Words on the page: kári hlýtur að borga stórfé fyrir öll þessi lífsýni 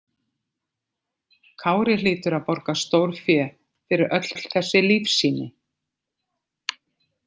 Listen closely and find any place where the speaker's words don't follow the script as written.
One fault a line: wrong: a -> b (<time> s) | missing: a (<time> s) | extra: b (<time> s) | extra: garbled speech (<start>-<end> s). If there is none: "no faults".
extra: öll (4.3 s)